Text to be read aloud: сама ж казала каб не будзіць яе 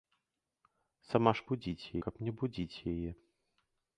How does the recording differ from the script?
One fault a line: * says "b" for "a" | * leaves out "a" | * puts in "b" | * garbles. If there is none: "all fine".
* says "будзіць" for "казала"